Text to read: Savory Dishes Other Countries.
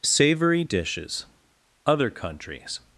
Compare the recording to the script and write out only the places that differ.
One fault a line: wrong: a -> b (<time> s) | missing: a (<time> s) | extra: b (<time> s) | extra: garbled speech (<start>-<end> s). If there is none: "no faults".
no faults